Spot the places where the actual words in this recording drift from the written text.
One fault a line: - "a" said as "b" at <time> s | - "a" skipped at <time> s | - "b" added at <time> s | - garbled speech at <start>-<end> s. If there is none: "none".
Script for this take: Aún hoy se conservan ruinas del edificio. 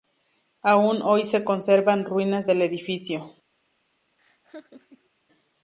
none